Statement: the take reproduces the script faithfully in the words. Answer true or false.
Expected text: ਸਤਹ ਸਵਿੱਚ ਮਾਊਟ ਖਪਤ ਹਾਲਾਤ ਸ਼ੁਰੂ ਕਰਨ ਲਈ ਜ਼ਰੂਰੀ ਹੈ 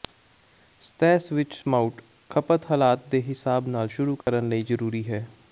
false